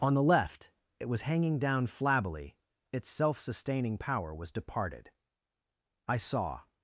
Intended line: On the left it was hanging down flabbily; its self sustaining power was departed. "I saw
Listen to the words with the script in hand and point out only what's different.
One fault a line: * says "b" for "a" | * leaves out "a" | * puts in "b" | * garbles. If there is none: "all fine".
all fine